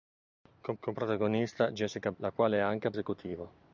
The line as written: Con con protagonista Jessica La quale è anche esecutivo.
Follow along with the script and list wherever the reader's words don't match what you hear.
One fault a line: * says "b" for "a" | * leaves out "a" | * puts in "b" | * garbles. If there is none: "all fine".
all fine